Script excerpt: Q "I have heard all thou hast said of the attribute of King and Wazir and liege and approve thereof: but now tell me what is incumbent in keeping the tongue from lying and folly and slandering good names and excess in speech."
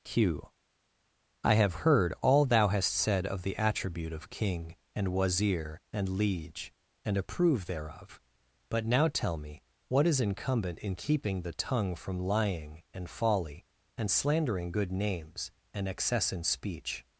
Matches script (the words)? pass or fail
pass